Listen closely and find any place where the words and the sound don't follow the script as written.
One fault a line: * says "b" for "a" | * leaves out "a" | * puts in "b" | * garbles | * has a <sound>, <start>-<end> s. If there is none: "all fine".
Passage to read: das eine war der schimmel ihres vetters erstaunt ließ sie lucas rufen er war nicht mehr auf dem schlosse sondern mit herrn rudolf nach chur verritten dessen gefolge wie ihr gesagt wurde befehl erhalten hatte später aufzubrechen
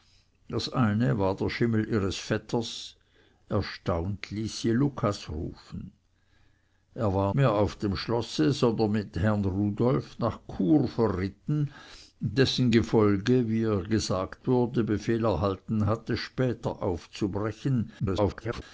* leaves out "nicht"
* garbles